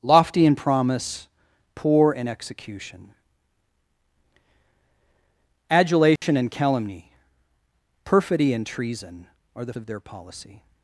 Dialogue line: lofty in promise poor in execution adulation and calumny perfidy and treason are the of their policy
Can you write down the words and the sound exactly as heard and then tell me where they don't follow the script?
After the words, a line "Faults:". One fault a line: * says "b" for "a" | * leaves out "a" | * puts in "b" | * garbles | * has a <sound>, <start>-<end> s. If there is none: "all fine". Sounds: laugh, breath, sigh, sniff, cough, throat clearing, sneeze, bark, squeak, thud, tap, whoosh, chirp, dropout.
lofty in promise poor in execution adulation and calumny perfidy and treason are the of their policy
Faults:
* has a dropout, 6.2-6.2 s